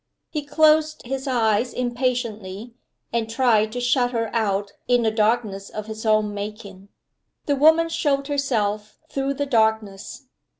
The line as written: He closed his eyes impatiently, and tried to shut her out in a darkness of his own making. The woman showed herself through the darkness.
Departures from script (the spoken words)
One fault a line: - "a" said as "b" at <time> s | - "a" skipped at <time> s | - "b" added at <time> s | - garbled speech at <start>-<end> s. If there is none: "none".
none